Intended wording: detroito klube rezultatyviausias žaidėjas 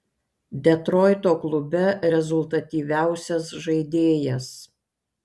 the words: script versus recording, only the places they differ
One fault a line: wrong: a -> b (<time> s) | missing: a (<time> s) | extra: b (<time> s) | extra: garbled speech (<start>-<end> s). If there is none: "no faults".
no faults